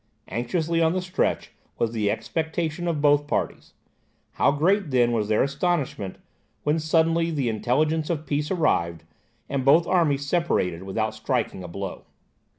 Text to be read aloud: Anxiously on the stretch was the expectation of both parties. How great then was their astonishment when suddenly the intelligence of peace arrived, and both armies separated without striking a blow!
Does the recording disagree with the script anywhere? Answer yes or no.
no